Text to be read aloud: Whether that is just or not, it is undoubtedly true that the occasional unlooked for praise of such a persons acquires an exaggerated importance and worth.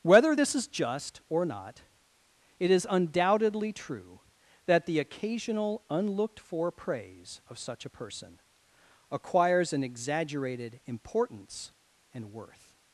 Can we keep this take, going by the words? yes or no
no